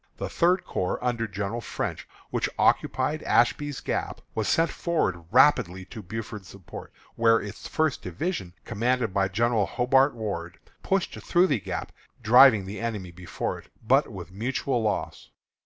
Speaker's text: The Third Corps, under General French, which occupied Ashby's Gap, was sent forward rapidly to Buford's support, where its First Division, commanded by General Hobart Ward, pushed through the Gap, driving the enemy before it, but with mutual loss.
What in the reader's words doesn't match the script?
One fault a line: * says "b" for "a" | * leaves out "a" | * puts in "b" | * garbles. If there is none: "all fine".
all fine